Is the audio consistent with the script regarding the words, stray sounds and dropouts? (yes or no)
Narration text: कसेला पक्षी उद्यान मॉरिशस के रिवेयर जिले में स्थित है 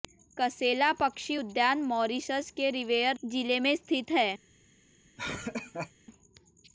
no